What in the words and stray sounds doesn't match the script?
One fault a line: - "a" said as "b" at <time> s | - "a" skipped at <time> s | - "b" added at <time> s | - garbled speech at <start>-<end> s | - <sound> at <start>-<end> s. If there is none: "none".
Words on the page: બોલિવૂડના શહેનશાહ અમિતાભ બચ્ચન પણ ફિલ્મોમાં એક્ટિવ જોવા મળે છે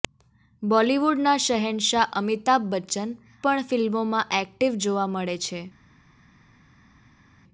none